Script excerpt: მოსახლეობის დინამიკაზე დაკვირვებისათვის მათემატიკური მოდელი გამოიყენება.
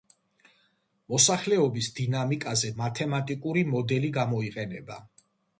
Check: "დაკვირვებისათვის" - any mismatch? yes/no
yes